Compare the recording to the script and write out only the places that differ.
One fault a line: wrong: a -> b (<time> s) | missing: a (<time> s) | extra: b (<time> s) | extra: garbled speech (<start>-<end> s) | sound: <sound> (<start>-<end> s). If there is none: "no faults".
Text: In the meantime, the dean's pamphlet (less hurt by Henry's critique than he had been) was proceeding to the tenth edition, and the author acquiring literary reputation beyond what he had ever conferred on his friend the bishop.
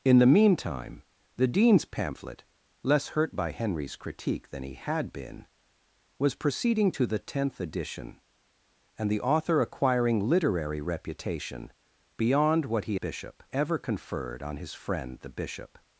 wrong: had -> bishop (12.9 s)